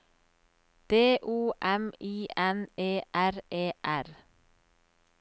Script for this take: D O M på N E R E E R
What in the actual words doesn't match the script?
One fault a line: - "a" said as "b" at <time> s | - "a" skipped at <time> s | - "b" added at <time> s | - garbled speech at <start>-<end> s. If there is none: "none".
- "på" said as "I" at 2.0 s
- "E" skipped at 3.7 s